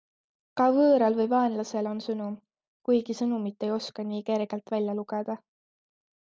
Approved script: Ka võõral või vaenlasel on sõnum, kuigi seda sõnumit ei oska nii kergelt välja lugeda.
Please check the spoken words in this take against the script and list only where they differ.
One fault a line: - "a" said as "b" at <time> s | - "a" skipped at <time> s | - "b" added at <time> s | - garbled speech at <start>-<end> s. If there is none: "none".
- "seda" skipped at 3.2 s